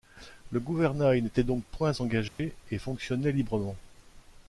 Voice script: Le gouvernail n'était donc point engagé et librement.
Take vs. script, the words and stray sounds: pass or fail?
fail